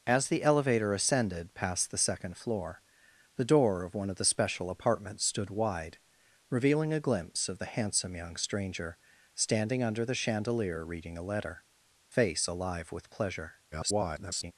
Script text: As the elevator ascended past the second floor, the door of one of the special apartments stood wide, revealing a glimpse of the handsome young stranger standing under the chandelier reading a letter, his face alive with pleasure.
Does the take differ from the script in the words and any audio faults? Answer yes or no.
yes